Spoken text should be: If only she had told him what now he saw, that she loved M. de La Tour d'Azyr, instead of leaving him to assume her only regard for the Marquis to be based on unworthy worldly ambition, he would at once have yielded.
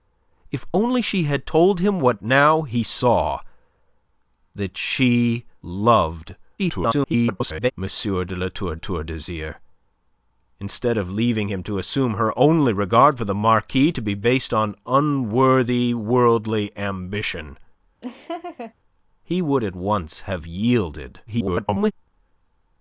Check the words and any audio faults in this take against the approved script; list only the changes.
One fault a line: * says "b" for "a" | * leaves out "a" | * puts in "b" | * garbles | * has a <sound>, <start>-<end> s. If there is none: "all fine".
* garbles
* puts in "Tour"
* has a laugh, 18.0-18.7 s
* garbles